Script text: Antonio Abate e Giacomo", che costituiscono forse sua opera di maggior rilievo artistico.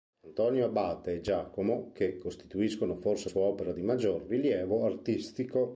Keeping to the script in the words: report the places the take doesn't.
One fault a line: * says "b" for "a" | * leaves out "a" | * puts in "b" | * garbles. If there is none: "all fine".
all fine